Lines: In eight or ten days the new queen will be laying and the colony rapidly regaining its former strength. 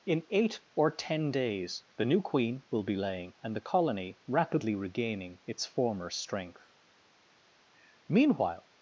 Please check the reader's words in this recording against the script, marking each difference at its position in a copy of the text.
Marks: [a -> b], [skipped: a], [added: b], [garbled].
In eight or ten days the new queen will be laying and the colony rapidly regaining its former strength. [added: Meanwhile]